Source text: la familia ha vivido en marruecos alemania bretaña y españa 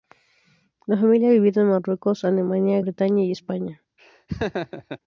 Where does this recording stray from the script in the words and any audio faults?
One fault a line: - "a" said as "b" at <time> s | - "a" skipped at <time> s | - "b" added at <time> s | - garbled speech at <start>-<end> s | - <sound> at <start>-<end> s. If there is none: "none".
- laugh at 4.0-5.0 s